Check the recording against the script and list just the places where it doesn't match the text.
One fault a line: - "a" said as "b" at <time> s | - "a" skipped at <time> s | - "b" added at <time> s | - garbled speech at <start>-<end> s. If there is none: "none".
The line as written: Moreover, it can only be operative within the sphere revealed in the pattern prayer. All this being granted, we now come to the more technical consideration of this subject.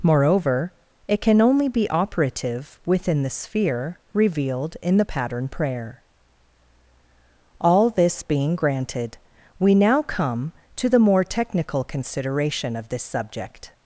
none